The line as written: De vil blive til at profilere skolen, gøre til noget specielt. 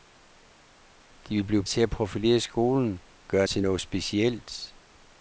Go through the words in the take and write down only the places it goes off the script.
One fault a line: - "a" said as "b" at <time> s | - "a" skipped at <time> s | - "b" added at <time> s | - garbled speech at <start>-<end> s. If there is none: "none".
none